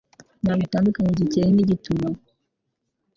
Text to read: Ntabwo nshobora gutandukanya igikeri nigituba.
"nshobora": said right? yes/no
no